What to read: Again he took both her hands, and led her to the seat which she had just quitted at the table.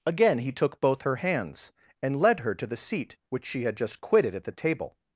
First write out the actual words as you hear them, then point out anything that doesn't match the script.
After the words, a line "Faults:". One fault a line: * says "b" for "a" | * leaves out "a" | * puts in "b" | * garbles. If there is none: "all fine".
Again he took both her hands, and led her to the seat which she had just quitted at the table.
Faults:
all fine